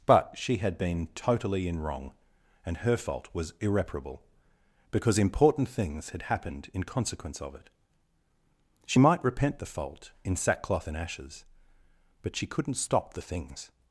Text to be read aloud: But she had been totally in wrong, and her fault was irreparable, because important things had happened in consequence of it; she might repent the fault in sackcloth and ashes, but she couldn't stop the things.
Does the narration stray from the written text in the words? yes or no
no